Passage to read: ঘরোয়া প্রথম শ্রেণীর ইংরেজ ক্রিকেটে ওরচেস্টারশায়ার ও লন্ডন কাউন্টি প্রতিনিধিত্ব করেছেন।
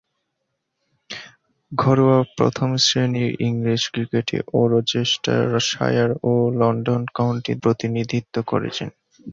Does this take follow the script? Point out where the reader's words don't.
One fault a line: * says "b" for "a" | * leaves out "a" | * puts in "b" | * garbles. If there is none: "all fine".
all fine